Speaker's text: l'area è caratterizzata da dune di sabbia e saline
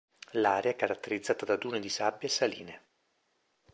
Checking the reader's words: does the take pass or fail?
pass